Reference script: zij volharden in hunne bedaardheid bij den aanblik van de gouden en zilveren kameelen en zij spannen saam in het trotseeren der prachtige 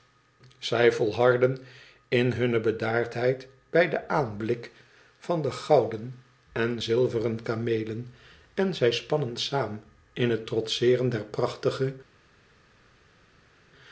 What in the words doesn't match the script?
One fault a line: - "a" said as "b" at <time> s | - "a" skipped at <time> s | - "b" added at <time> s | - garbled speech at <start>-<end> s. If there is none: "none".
none